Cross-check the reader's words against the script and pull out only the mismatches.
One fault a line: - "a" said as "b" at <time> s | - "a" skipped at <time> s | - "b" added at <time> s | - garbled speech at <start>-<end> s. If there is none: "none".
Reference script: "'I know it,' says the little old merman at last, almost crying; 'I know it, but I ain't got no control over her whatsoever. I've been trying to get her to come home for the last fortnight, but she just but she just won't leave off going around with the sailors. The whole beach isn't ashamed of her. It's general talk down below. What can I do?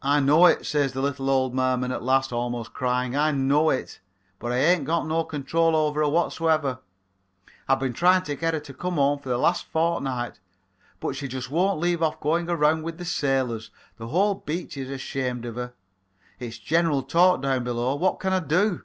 - "but she just" skipped at 11.5 s
- "isn't" said as "is" at 14.8 s